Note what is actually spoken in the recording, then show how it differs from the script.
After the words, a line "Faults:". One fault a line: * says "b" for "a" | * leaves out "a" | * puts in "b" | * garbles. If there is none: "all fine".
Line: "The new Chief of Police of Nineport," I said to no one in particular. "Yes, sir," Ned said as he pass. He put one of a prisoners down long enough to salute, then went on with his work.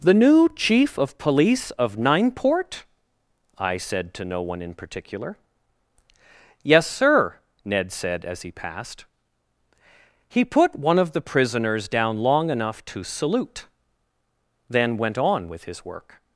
"The new Chief of Police of Nineport," I said to no one in particular. "Yes, sir," Ned said as he passed. He put one of the prisoners down long enough to salute, then went on with his work.
Faults:
* says "passed" for "pass"
* says "the" for "a"